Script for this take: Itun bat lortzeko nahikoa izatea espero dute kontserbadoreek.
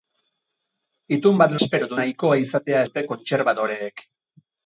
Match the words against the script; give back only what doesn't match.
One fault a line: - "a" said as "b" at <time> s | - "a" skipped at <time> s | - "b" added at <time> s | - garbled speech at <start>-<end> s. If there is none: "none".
- "lortzeko" said as "espero" at 1.6 s
- "espero" skipped at 2.8 s